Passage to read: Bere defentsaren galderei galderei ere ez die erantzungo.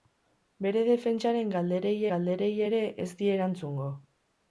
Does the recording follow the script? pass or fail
pass